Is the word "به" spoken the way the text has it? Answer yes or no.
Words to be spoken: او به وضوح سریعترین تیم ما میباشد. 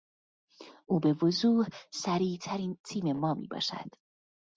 yes